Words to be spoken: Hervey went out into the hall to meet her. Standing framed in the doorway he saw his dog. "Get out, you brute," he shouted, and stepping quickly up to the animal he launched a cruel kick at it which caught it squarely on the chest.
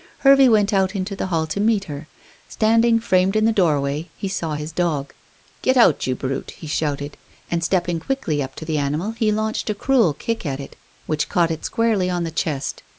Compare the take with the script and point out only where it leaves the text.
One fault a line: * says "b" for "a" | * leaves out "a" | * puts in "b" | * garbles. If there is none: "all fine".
all fine